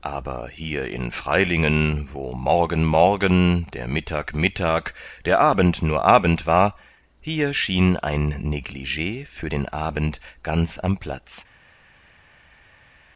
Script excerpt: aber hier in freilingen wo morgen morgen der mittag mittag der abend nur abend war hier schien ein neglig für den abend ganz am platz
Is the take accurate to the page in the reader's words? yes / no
yes